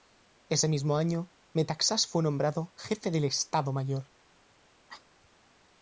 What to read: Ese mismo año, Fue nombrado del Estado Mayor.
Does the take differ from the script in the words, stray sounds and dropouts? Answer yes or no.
yes